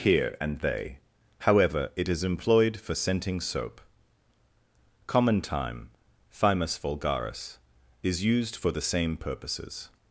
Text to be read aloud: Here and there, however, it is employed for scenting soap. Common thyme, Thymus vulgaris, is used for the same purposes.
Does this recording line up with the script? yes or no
no